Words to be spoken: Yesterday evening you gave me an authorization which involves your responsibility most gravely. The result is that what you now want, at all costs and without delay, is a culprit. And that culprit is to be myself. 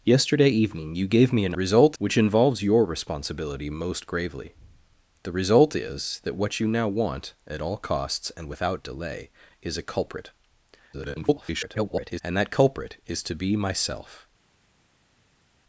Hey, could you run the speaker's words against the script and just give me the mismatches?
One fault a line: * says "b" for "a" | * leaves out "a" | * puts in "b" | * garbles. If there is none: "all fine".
* says "result" for "authorization"
* garbles